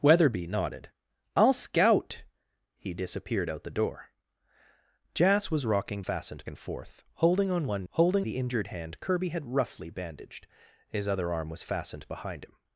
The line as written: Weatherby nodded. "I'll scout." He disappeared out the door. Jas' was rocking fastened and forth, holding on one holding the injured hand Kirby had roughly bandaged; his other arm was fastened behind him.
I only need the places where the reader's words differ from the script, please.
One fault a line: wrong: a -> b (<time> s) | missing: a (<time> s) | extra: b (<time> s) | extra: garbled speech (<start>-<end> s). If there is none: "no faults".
no faults